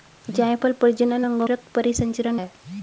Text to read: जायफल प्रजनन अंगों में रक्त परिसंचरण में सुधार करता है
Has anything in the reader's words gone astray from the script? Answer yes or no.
yes